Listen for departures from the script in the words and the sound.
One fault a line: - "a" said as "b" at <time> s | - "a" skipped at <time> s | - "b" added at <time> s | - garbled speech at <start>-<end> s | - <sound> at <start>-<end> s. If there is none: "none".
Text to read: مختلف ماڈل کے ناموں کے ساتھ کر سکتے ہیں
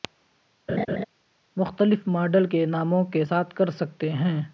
- laugh at 0.7-1.0 s